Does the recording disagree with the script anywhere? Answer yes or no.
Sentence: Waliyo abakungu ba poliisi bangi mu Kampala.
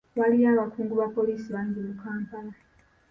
no